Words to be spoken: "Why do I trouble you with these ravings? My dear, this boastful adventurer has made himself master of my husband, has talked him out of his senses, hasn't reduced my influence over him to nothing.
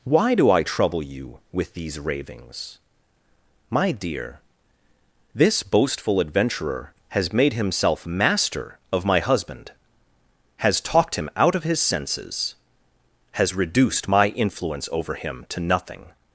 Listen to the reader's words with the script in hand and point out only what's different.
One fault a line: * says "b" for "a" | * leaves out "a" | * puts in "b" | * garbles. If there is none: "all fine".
* says "has" for "hasn't"